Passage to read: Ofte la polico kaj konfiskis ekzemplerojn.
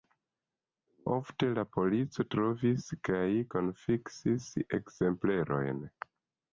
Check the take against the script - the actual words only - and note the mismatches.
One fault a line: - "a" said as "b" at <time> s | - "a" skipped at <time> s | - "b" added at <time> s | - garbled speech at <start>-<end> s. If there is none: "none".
- "trovis" added at 2.4 s